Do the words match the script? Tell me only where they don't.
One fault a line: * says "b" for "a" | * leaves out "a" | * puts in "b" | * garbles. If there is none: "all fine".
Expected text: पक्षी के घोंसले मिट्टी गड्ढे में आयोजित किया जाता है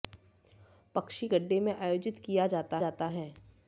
* leaves out "के घोंसले मिट्टी"
* puts in "जाता"